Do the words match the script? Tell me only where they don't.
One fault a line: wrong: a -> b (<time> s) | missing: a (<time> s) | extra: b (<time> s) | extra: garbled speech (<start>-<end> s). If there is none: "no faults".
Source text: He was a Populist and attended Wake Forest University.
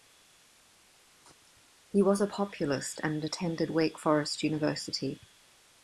no faults